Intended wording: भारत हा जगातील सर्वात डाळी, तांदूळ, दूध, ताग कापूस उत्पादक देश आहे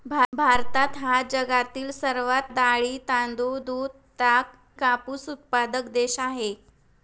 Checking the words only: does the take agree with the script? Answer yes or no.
yes